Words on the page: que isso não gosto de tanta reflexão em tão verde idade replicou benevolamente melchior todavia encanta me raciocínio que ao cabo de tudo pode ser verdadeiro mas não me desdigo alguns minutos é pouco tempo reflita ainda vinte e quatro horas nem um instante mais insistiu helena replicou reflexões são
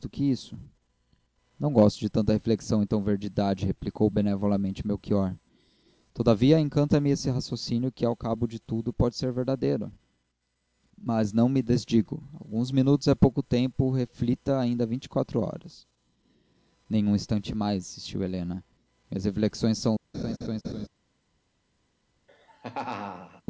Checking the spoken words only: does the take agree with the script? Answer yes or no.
no